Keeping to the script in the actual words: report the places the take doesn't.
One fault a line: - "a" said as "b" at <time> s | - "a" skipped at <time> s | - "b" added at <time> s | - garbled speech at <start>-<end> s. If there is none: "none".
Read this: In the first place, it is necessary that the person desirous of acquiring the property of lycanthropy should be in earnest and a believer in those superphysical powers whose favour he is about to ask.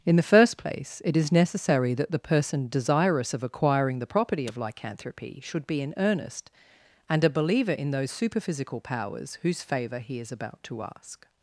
none